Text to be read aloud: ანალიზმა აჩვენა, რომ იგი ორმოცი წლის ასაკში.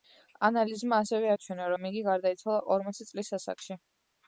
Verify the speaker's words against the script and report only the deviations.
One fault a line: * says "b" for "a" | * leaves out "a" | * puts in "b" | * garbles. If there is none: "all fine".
* puts in "ასევე"
* puts in "გარდაიცვალა"